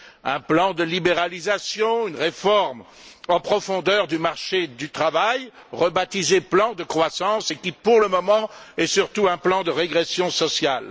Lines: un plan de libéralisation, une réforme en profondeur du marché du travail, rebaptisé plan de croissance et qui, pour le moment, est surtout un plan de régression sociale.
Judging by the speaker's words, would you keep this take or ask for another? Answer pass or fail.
pass